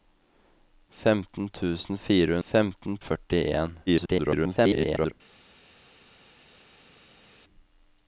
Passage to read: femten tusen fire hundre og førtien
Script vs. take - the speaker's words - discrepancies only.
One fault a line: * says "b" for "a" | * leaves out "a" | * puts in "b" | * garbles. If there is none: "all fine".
* says "femten" for "hundre"
* garbles